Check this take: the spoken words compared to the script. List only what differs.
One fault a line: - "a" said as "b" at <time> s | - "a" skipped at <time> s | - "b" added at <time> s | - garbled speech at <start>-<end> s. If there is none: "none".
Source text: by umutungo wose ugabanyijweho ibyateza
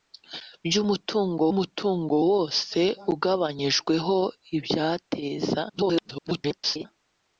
- "umutungo" added at 1.5 s
- garbled speech at 5.7-6.9 s